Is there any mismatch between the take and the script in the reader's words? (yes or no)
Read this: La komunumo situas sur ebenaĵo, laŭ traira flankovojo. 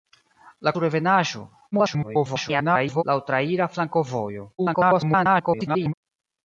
yes